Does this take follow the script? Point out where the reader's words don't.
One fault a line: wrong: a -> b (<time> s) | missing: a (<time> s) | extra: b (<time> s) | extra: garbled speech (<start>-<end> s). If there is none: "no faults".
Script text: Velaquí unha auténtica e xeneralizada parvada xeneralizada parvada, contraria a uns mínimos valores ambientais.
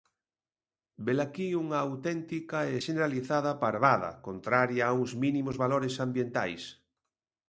missing: xeneralizada parvada (4.1 s)